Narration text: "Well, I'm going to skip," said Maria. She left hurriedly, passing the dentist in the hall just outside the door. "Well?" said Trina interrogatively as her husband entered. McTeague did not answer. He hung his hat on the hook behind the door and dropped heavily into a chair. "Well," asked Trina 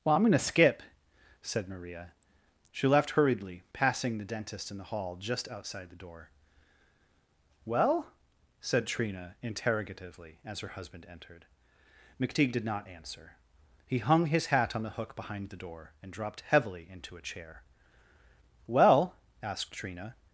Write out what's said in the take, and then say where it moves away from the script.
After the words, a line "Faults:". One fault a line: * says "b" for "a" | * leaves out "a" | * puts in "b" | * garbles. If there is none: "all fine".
"Well, I'm going to skip," said Maria. She left hurriedly, passing the dentist in the hall just outside the door. "Well?" said Trina interrogatively as her husband entered. McTeague did not answer. He hung his hat on the hook behind the door and dropped heavily into a chair. "Well," asked Trina
Faults:
all fine